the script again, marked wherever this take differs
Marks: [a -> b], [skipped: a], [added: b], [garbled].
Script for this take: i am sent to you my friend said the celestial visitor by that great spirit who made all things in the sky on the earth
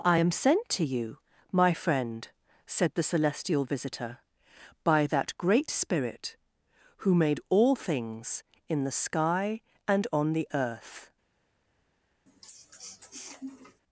i am sent to you my friend said the celestial visitor by that great spirit who made all things in the sky [added: and] on the earth